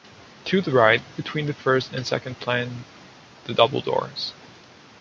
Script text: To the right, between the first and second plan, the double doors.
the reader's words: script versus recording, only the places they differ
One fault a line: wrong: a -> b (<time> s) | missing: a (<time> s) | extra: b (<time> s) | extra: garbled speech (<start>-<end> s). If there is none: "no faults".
no faults